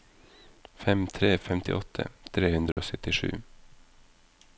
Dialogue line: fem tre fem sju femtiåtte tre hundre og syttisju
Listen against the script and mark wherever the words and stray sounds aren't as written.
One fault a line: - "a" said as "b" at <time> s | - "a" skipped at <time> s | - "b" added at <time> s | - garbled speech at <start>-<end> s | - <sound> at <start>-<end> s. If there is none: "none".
- "fem sju" skipped at 1.3 s
- dropout at 2.7-2.8 s